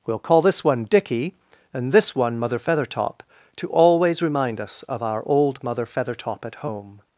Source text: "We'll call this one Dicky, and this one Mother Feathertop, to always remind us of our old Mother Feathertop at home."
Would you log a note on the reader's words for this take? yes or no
no